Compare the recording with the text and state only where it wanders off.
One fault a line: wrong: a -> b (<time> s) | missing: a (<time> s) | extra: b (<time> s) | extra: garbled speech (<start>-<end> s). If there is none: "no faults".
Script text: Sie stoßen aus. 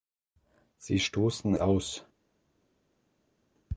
no faults